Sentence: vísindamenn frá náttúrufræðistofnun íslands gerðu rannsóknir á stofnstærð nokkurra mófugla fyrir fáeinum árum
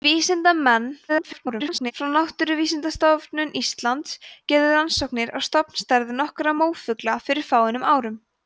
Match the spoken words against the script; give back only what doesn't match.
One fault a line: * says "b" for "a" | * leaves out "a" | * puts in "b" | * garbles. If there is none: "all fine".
* garbles